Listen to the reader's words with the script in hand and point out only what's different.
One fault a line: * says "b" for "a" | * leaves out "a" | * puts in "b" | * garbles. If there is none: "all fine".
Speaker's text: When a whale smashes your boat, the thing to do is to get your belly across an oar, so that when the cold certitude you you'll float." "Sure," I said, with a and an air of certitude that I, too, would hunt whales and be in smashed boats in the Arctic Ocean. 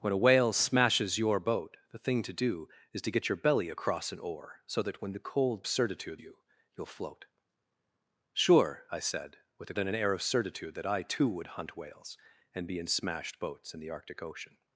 all fine